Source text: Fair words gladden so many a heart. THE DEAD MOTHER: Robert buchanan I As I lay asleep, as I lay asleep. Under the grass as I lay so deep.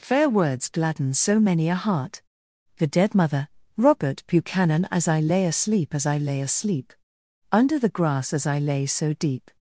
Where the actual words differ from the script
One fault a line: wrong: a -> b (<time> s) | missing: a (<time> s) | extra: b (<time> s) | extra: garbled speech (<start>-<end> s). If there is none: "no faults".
missing: I (4.9 s)